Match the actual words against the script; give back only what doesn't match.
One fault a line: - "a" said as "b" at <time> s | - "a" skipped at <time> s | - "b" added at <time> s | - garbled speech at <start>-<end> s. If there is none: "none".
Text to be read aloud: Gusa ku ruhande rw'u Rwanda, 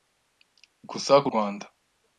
- "ruhande rw'u" skipped at 1.3 s